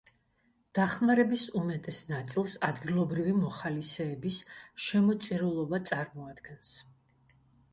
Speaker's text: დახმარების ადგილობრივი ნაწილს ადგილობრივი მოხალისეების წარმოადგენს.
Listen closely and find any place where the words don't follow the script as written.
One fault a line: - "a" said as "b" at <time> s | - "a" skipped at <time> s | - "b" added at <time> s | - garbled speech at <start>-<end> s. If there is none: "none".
- "ადგილობრივი" said as "უმეტეს" at 1.6 s
- "შემოწირულობა" added at 4.9 s